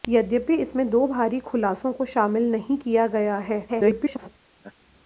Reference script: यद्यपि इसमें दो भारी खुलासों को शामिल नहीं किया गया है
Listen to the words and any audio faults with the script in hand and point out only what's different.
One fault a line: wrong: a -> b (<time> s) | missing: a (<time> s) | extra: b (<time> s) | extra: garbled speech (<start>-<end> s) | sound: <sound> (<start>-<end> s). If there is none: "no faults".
extra: garbled speech (3.7-4.3 s)
sound: laugh (4.6-4.7 s)